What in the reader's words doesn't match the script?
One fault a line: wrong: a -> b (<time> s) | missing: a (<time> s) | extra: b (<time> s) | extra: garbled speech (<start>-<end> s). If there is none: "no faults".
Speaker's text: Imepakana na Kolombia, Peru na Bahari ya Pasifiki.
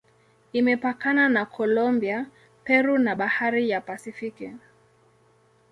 no faults